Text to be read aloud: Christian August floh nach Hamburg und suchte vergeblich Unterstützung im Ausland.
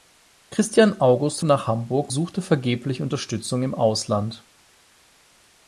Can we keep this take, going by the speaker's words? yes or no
no